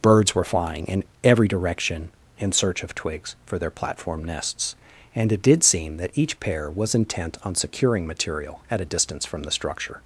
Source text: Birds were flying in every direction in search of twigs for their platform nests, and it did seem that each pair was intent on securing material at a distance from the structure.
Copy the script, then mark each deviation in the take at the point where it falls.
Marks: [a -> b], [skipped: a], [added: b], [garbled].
Birds were flying in every direction in search of twigs for their platform nests, and it did seem that each pair was intent on securing material at a distance from the structure.